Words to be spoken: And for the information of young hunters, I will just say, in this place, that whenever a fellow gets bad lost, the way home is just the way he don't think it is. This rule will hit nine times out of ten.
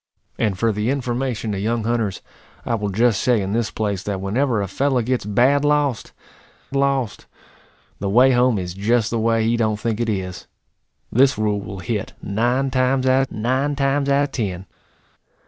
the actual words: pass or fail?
fail